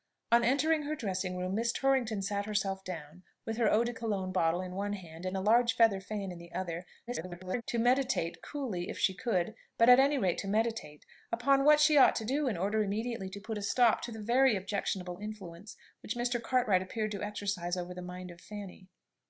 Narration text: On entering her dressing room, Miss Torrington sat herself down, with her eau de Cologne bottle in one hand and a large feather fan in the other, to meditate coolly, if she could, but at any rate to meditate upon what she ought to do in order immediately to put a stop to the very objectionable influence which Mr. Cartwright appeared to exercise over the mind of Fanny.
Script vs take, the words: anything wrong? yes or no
yes